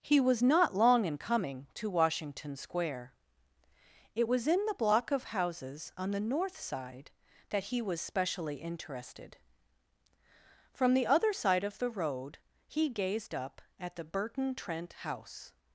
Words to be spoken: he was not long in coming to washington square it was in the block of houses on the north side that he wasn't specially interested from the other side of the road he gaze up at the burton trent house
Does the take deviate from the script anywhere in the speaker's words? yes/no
yes